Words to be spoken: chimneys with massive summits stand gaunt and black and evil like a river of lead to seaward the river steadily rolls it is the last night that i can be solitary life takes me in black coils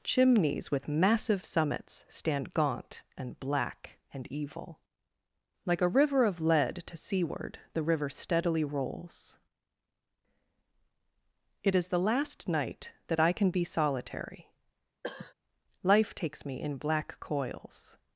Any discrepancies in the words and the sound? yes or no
yes